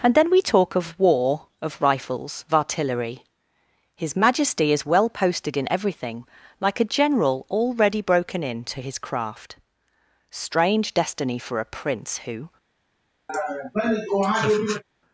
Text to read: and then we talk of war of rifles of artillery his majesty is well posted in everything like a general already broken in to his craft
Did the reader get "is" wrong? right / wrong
right